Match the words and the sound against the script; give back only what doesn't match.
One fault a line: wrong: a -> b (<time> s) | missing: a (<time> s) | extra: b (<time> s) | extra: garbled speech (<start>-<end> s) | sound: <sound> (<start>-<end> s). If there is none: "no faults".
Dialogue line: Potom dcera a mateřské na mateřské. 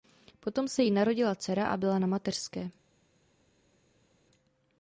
extra: se jí narodila (0.7 s)
wrong: mateřské -> byla (1.8 s)